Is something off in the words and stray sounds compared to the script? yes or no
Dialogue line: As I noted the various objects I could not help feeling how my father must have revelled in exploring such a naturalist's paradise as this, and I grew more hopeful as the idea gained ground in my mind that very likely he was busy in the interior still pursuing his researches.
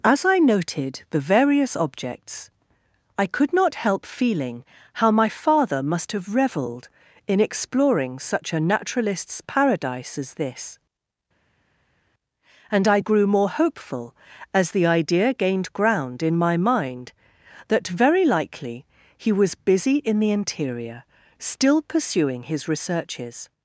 no